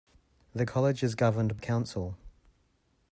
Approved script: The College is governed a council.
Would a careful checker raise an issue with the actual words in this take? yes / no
no